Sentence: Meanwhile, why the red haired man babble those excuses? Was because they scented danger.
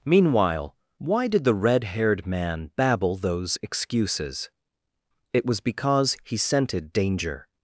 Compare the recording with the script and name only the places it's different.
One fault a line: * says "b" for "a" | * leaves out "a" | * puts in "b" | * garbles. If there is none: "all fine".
* puts in "did"
* puts in "It"
* says "he" for "they"